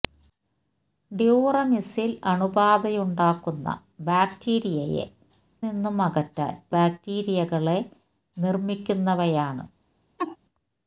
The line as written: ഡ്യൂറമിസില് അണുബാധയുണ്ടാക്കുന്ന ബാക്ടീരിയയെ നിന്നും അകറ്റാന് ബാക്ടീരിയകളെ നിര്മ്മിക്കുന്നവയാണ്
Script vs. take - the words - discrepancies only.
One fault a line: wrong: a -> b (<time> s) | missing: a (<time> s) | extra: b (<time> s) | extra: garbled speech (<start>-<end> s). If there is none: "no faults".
no faults